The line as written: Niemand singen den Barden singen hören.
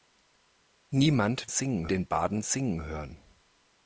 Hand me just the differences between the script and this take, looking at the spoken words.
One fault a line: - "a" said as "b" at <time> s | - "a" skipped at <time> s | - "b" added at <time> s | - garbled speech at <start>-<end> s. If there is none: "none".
none